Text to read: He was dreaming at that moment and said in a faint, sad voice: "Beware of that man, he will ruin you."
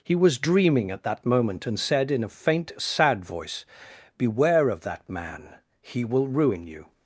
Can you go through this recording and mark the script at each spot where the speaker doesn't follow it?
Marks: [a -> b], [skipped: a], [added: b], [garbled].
He was dreaming at that moment and said in a faint, sad voice: "Beware of that man, he will ruin you."